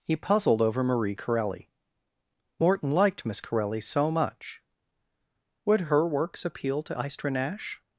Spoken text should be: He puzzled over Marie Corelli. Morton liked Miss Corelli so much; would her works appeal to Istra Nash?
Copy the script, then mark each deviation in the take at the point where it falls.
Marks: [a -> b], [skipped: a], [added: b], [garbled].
He puzzled over Marie Corelli. Morton liked Miss Corelli so much; would her works appeal to Istra Nash?